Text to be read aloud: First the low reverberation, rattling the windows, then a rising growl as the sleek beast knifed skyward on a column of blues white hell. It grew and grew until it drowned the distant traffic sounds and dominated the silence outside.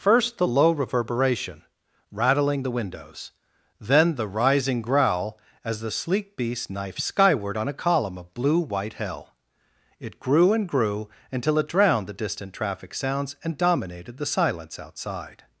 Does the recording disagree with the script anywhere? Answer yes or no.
yes